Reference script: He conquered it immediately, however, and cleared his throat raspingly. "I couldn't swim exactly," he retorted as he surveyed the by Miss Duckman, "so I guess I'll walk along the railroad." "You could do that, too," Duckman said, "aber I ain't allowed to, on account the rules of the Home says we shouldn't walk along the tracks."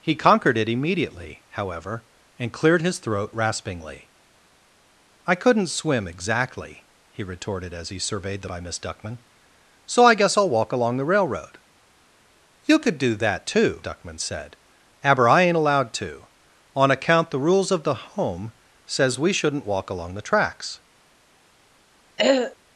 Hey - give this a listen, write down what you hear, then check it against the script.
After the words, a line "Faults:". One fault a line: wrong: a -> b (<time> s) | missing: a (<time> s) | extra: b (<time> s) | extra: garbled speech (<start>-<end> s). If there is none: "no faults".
He conquered it immediately, however, and cleared his throat raspingly. "I couldn't swim exactly," he retorted as he surveyed the by Miss Duckman, "so I guess I'll walk along the railroad." "You could do that, too," Duckman said, "aber I ain't allowed to, on account the rules of the Home says we shouldn't walk along the tracks."
Faults:
no faults